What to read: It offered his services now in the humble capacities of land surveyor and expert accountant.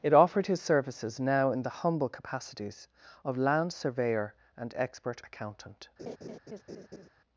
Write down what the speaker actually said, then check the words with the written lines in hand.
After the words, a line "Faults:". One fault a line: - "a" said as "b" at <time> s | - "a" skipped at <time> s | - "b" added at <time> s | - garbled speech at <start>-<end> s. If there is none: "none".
It offered his services now in the humble capacities of land surveyor and expert accountant.
Faults:
none